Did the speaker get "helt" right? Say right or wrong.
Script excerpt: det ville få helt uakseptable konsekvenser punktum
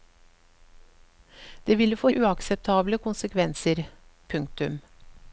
wrong